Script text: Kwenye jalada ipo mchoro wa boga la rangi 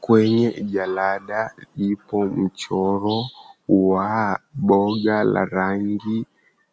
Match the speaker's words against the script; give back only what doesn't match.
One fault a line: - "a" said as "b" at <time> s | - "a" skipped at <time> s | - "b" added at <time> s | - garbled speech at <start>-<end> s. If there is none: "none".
none